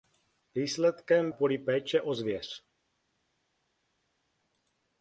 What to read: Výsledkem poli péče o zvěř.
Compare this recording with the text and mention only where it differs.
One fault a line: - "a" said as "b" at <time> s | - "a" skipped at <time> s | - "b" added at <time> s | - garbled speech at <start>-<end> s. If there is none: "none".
none